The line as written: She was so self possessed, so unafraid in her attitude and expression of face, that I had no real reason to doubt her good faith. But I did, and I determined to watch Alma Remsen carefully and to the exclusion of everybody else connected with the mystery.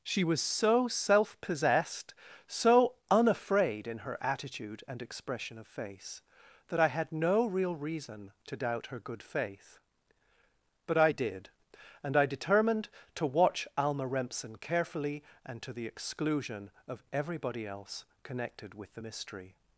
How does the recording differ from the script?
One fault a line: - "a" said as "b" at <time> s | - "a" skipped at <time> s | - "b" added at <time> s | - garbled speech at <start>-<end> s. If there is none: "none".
none